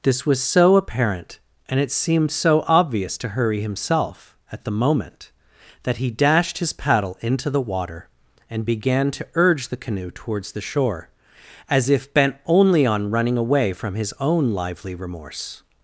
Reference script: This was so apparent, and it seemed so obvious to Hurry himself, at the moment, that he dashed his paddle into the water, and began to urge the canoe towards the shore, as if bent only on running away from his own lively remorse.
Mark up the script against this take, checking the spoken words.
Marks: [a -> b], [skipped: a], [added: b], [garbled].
This was so apparent, and it seemed so obvious to Hurry himself, at the moment, that he dashed his paddle into the water, and began to urge the canoe towards the shore, as if bent only on running away from his own lively remorse.